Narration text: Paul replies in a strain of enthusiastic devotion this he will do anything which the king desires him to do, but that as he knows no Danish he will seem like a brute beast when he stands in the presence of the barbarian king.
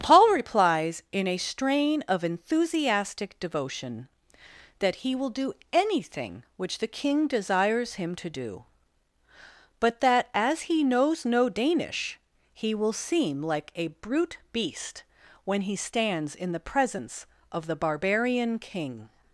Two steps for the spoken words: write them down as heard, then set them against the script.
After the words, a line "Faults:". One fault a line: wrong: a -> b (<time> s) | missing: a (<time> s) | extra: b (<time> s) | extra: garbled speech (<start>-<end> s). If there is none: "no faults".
Paul replies in a strain of enthusiastic devotion that he will do anything which the king desires him to do, but that as he knows no Danish he will seem like a brute beast when he stands in the presence of the barbarian king.
Faults:
wrong: this -> that (4.8 s)